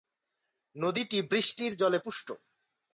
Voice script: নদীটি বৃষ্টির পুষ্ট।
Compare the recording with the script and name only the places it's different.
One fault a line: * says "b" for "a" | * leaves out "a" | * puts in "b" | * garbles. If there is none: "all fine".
* puts in "জলে"